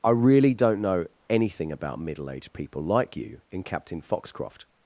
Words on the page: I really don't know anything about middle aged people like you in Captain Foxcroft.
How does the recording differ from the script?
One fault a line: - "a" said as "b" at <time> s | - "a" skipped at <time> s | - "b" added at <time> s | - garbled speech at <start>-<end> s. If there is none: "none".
none